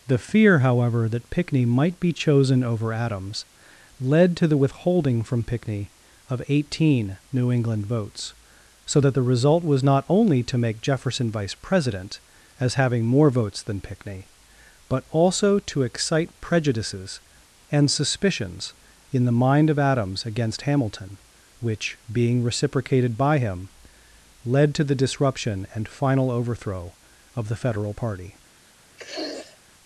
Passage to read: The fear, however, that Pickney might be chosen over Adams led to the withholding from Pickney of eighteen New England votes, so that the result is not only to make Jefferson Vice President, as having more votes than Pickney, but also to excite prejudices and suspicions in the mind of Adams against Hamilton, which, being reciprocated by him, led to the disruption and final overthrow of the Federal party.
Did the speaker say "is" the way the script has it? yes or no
no